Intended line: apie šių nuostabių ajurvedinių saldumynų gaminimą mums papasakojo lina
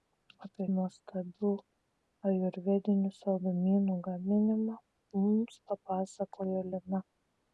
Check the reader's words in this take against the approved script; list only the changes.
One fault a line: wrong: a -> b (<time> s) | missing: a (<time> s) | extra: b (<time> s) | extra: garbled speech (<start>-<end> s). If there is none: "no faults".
missing: šių (0.7 s)